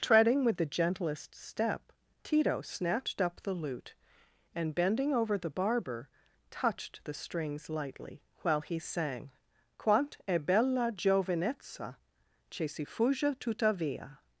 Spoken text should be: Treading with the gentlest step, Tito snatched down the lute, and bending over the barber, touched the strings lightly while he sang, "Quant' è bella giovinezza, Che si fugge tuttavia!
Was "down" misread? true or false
true